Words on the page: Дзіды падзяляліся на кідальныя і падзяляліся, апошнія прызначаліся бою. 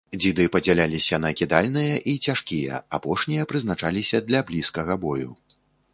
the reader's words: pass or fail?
fail